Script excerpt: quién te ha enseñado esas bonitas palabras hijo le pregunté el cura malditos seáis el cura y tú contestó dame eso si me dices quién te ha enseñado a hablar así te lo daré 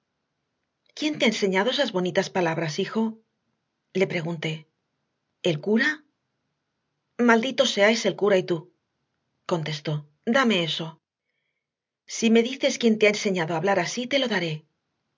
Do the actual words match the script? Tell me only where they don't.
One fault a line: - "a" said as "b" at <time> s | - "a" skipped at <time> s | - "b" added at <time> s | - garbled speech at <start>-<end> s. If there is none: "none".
none